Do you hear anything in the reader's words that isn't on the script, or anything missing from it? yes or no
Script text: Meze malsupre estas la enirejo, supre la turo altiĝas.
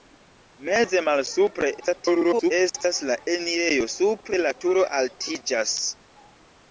yes